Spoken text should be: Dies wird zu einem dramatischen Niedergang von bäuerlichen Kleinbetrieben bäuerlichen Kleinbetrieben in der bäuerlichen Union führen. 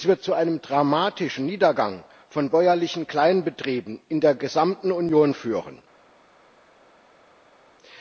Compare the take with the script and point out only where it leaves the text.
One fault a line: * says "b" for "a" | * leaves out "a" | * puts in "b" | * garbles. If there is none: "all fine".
* leaves out "bäuerlichen Kleinbetrieben"
* says "gesamten" for "bäuerlichen"